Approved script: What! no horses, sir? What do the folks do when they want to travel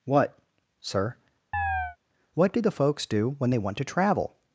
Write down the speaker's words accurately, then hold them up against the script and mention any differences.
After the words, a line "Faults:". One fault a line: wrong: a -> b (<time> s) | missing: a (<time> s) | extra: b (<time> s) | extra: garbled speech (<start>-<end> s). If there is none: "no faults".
What! sir? What do the folks do when they want to travel
Faults:
missing: no horses (0.4 s)